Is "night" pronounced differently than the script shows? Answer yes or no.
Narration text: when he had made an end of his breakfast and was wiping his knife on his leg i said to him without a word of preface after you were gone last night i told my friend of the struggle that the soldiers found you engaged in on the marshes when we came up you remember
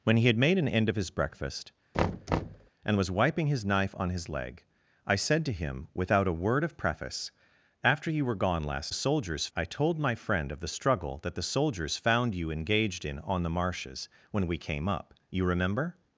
yes